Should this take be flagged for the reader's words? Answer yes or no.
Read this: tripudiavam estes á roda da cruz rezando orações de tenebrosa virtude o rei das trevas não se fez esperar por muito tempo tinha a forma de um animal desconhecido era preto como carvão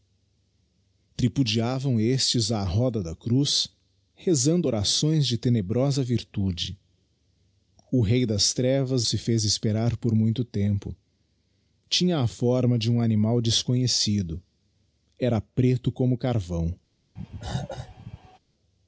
yes